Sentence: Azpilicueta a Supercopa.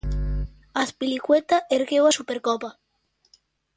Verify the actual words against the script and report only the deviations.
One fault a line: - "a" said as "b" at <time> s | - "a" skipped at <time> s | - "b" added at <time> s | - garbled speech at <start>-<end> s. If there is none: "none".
- "ergueu" added at 1.7 s